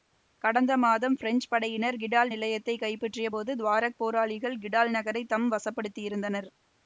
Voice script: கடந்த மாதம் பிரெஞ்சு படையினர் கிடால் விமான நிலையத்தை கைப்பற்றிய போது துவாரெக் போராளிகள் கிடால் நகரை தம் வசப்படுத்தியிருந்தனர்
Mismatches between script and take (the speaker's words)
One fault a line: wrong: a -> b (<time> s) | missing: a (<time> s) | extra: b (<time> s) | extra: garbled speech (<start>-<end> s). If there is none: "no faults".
missing: விமான (2.3 s)